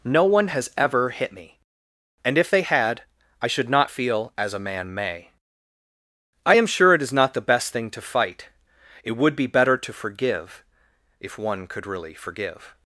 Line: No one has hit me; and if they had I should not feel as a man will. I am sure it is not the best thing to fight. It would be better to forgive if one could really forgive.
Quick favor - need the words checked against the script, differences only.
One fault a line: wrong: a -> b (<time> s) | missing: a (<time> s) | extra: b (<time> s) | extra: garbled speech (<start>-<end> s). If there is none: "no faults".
extra: ever (0.8 s)
wrong: will -> may (4.9 s)